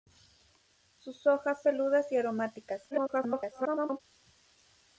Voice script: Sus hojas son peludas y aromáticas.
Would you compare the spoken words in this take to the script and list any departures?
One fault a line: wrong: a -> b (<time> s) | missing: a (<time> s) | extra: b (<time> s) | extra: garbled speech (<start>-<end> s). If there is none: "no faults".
missing: son (1.6 s)
extra: garbled speech (2.9-4.0 s)